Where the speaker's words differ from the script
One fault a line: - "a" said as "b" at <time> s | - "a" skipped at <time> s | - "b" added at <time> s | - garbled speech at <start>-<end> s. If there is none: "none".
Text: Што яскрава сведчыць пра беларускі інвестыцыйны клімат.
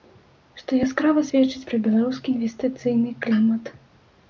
none